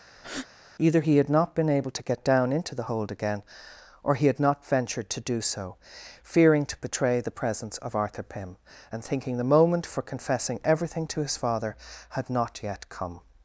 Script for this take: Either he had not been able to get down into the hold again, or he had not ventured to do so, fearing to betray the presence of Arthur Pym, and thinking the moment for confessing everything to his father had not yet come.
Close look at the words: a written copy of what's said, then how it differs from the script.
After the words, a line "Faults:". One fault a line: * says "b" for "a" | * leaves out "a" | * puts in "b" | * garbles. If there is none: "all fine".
Either he had not been able to get down into the hold again, or he had not ventured to do so, fearing to betray the presence of Arthur Pym, and thinking the moment for confessing everything to his father had not yet come.
Faults:
all fine